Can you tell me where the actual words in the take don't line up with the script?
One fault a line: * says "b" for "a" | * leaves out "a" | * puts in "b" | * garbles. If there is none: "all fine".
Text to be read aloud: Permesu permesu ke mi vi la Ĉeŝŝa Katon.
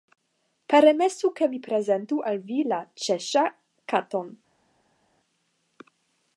* leaves out "permesu"
* puts in "prezentu al"